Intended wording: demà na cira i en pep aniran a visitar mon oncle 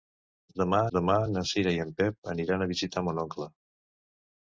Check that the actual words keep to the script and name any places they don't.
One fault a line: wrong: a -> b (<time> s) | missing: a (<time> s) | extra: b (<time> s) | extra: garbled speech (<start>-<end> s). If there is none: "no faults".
extra: demà (1.0 s)